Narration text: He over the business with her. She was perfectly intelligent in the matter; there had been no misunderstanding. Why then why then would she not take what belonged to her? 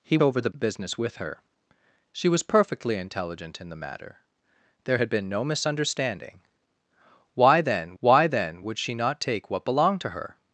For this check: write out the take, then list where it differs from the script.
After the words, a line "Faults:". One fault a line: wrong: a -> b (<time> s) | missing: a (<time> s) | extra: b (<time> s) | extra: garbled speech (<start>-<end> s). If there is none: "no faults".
He over the business with her. She was perfectly intelligent in the matter; there had been no misunderstanding. Why then why then would she not take what belonged to her?
Faults:
no faults